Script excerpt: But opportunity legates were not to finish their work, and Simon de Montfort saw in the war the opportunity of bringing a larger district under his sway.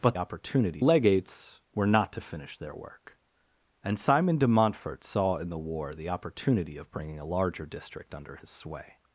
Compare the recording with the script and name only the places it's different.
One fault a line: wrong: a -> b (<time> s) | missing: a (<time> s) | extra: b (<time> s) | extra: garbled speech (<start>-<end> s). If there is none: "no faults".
no faults